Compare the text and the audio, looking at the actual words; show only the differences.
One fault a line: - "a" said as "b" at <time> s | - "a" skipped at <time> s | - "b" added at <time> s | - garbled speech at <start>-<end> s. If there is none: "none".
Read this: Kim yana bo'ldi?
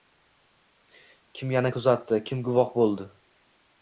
- "kuzatdi kim guvoh" added at 1.7 s